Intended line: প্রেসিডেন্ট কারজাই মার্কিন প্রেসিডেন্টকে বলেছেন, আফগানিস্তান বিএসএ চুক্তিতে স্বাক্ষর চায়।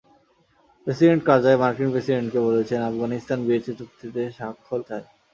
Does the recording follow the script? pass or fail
pass